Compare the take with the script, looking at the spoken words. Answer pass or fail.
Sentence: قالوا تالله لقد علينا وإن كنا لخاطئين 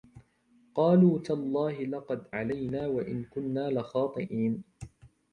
pass